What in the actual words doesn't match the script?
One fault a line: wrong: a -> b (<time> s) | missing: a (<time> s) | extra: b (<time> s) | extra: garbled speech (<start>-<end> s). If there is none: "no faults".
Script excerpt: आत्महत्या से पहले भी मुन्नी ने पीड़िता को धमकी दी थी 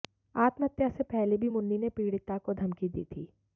no faults